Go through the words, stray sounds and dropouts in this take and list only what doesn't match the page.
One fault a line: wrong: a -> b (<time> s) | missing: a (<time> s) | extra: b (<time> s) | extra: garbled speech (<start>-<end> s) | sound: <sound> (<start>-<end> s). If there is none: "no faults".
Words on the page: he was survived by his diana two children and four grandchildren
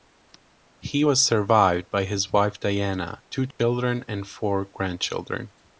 extra: wife (2.3 s)
sound: dropout (3.5-3.6 s)